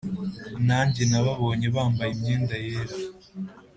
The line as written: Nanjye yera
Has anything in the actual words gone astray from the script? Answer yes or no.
yes